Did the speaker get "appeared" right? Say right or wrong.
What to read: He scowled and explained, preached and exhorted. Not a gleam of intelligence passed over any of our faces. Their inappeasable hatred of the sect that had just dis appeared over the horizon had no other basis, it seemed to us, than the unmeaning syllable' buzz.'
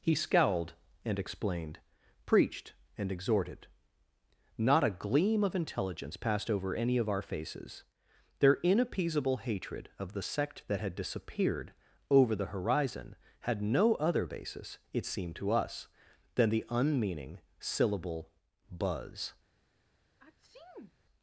wrong